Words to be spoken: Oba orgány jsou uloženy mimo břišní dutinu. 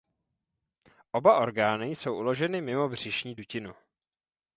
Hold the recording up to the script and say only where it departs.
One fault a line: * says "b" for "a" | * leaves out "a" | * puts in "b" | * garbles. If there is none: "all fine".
all fine